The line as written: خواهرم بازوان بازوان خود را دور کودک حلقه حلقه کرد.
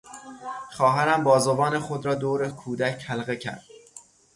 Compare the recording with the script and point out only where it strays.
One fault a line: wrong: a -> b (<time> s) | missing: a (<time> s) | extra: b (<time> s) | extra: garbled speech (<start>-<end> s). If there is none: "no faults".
missing: بازوان (1.8 s)
missing: حلقه (3.4 s)